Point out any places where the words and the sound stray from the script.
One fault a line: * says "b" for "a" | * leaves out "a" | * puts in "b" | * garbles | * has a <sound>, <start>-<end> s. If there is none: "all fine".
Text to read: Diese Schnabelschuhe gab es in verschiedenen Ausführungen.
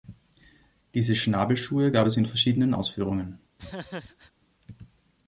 * has a laugh, 3.6-4.3 s